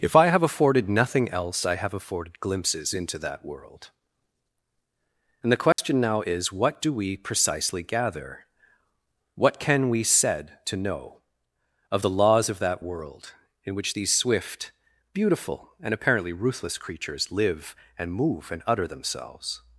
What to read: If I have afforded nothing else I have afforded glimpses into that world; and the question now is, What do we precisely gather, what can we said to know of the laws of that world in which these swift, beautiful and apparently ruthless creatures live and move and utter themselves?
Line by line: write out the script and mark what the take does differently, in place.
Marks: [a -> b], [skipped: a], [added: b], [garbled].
If I have afforded nothing else I have afforded glimpses into that world; and the question now is, What do we precisely gather, what can we said to know of the laws of that world in which these swift, beautiful and apparently ruthless creatures live and move and utter themselves?